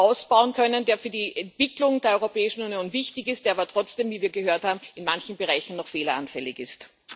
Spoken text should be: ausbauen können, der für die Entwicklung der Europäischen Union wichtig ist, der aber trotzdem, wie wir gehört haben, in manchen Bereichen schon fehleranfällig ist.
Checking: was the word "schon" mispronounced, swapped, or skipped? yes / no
yes